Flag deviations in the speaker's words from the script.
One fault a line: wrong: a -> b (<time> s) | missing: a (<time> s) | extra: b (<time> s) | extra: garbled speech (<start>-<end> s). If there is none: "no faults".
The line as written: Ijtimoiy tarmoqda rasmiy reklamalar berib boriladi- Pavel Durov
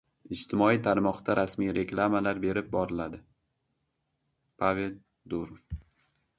no faults